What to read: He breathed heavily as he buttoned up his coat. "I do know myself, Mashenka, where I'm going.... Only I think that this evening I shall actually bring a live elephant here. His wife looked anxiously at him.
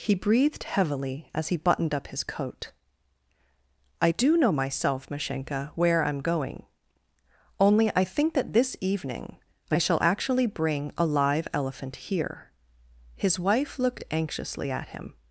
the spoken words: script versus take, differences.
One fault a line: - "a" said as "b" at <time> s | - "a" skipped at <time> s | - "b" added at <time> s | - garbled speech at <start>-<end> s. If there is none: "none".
none